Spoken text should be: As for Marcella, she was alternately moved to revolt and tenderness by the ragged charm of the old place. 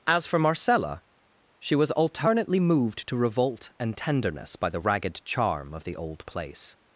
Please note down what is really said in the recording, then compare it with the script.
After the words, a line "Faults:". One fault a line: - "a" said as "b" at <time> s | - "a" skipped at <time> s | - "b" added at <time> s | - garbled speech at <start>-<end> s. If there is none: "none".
As for Marcella, she was alternately moved to revolt and tenderness by the ragged charm of the old place.
Faults:
none